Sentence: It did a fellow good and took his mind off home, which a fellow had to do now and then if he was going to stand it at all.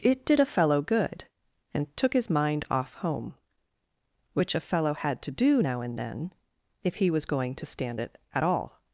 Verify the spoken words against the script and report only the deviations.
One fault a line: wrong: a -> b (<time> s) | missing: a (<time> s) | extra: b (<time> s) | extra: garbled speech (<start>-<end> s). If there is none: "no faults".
no faults